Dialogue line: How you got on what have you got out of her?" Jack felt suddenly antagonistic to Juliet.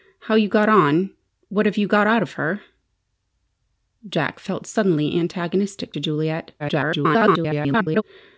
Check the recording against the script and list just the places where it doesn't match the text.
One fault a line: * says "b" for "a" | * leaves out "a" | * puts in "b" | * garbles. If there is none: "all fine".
* garbles